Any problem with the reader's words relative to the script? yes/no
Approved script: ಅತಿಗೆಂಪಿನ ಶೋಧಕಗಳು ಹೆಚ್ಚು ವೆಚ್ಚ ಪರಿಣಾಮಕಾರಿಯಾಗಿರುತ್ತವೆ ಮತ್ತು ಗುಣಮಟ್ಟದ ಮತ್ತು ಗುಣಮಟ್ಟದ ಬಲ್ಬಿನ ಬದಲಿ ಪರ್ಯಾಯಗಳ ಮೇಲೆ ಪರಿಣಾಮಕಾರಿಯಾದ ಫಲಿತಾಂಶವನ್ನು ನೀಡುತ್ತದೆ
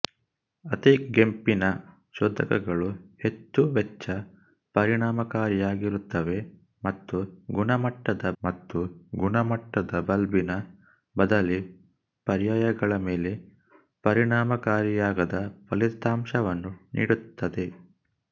no